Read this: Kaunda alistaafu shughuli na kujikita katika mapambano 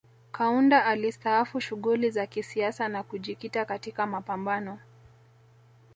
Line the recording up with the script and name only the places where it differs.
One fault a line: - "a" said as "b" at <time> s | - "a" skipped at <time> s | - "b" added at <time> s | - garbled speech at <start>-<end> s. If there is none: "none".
- "za kisiasa" added at 2.1 s